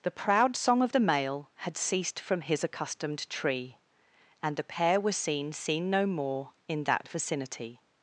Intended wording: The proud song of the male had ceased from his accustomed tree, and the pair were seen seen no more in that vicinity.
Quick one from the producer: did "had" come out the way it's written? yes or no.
yes